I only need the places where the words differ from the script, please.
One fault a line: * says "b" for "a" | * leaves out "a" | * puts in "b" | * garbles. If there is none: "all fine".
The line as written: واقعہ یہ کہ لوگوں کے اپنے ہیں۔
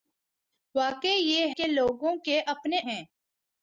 all fine